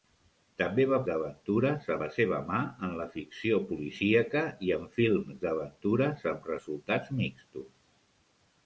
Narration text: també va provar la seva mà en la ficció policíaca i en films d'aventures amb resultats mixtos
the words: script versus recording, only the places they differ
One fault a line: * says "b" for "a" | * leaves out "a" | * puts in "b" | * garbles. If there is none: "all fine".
* says "d'aventures" for "provar"